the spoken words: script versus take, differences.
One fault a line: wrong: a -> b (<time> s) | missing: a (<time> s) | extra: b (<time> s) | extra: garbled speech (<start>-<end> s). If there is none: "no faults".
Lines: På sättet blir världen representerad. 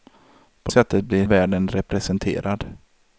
no faults